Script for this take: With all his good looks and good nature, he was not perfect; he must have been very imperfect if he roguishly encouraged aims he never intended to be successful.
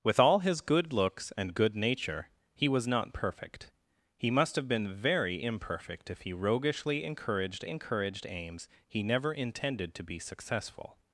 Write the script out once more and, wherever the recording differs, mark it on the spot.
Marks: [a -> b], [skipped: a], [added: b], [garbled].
With all his good looks and good nature, he was not perfect; he must have been very imperfect if he roguishly encouraged [added: encouraged] aims he never intended to be successful.